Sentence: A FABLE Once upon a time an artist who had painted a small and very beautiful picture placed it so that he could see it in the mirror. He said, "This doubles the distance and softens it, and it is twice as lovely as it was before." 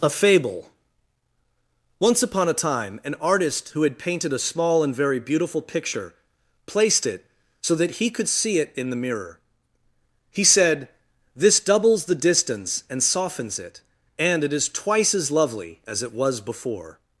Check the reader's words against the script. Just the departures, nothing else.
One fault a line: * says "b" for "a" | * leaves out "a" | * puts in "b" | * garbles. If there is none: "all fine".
all fine